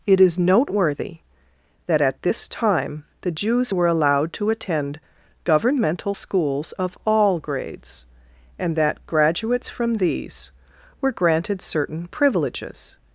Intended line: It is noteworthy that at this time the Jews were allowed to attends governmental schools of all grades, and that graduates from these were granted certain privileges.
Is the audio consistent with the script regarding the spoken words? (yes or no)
no